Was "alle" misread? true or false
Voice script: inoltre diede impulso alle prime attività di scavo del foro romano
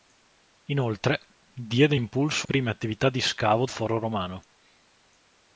true